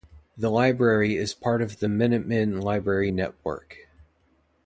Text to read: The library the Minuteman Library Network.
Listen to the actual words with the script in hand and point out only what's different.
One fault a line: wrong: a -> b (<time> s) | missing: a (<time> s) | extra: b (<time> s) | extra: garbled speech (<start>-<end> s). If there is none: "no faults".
extra: is part of (1.1 s)